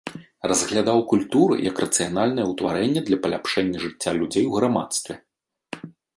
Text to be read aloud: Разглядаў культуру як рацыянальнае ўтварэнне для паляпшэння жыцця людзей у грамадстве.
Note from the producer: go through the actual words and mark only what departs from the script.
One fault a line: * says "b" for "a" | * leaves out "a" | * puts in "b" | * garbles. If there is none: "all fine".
all fine